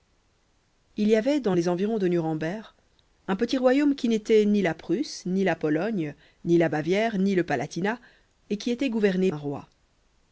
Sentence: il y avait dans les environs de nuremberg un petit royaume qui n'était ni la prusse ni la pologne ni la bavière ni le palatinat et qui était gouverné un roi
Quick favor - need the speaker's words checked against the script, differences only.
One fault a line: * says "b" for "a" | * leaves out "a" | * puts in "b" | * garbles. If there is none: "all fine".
all fine